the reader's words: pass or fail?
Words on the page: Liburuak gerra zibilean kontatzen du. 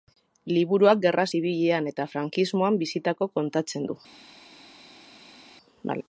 fail